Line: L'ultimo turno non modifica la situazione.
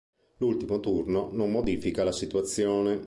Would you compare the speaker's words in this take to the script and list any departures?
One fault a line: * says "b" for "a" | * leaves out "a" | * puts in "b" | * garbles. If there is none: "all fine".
all fine